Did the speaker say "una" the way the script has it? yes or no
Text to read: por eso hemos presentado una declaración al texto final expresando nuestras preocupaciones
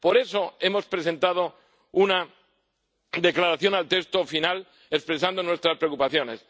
yes